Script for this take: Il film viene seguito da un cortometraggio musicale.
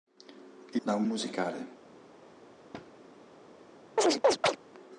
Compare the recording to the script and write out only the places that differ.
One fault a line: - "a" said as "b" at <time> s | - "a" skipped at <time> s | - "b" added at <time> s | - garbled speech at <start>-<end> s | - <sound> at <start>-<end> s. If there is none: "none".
- "film viene seguito" skipped at 0.8 s
- "cortometraggio" skipped at 1.0 s
- thud at 2.7-2.9 s
- chirp at 4.0-4.6 s